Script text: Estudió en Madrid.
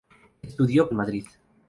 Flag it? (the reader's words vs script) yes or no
no